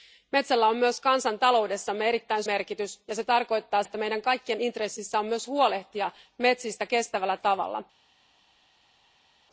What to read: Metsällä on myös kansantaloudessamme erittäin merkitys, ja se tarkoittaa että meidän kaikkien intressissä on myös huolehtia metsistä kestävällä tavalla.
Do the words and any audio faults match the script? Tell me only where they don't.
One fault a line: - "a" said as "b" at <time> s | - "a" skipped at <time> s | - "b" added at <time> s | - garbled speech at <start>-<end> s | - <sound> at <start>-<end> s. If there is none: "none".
none